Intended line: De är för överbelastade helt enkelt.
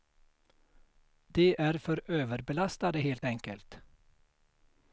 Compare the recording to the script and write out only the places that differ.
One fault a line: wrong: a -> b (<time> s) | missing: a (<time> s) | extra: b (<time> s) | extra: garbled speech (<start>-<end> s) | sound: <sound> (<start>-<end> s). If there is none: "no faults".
no faults